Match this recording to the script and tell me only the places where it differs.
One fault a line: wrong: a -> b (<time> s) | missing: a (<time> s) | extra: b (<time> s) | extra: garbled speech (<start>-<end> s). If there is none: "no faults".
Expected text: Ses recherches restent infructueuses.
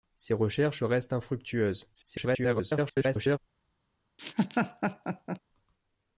extra: garbled speech (1.9-3.4 s)